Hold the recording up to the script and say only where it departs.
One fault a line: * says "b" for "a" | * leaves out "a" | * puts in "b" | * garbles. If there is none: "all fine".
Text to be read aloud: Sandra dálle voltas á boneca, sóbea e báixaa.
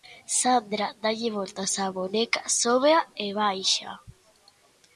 all fine